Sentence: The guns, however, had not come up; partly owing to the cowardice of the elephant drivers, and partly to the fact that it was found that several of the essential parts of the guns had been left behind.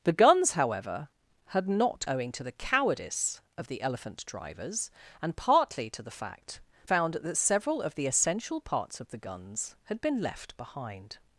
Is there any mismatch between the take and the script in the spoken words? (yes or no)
yes